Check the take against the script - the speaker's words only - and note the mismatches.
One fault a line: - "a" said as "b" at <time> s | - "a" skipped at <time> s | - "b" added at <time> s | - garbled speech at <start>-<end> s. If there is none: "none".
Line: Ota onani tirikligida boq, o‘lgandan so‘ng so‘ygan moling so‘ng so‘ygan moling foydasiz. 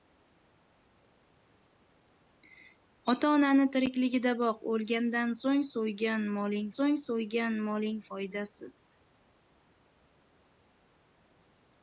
none